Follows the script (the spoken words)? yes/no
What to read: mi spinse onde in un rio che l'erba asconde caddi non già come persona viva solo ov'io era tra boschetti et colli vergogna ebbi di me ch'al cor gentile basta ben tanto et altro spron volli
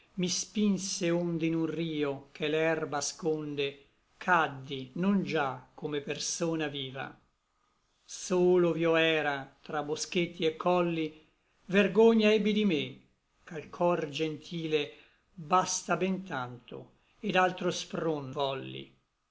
yes